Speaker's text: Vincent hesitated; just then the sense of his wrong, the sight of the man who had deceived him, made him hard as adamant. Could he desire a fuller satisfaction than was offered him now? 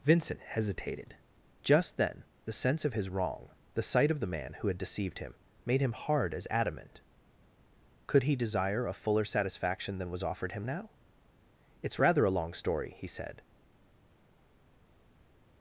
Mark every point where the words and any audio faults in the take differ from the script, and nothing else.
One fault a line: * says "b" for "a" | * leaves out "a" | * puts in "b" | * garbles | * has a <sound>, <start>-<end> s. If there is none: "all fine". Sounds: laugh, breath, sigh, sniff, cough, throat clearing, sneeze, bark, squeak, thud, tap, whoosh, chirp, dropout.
* puts in "It's rather a long story he said"